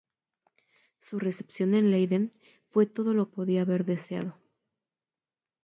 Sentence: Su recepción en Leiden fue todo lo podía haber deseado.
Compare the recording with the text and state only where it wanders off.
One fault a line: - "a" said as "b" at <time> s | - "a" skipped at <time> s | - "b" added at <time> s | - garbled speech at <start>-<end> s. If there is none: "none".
none